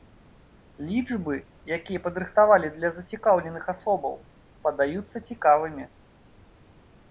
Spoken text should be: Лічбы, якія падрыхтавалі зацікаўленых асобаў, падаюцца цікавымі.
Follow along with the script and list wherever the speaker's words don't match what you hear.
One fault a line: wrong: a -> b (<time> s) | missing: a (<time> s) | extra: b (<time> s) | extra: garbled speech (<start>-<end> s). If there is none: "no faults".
extra: для (2.8 s)